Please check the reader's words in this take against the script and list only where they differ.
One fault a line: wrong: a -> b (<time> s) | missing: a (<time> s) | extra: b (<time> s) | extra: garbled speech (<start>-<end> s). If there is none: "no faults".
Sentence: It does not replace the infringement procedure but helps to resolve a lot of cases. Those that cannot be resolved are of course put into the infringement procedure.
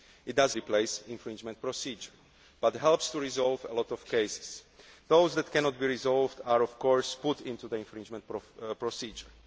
missing: not (0.6 s)